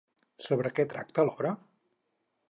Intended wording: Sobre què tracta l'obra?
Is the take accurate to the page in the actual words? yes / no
yes